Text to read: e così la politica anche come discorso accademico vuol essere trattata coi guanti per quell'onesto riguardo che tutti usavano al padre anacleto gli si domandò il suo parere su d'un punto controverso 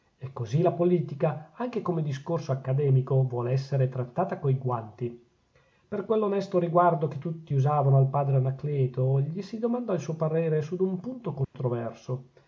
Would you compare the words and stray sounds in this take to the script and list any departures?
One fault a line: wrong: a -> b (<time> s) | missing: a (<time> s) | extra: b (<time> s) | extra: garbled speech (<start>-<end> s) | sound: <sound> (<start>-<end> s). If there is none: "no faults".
sound: dropout (11.4-11.5 s)